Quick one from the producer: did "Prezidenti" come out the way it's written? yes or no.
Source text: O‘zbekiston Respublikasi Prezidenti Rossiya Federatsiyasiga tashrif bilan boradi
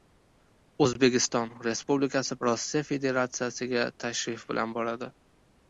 no